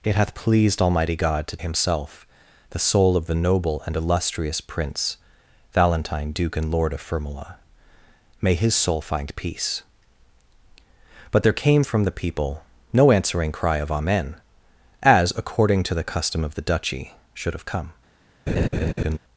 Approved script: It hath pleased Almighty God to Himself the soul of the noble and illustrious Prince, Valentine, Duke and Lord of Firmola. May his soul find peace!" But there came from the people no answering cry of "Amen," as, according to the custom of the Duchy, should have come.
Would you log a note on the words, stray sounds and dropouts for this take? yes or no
yes